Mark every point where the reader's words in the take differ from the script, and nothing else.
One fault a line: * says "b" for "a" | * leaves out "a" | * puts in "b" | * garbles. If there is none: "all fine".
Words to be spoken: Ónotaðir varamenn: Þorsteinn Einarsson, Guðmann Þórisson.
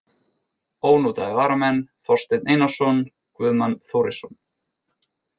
all fine